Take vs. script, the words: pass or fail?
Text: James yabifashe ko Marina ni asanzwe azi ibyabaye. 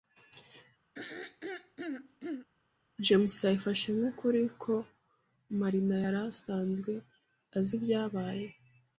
fail